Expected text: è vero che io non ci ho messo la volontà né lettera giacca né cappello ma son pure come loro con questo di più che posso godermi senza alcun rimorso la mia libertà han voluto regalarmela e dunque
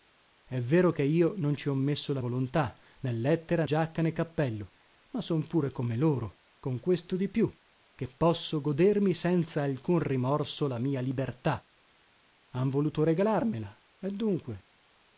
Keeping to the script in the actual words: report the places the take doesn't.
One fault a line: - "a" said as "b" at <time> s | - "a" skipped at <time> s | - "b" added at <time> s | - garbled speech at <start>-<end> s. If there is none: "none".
none